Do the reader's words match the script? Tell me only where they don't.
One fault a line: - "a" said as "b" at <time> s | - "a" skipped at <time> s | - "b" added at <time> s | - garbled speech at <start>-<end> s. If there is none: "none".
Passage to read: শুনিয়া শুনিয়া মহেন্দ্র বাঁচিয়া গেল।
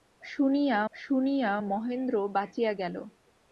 none